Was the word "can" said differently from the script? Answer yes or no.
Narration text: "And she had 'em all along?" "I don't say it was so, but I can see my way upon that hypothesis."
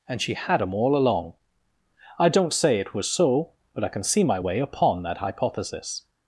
no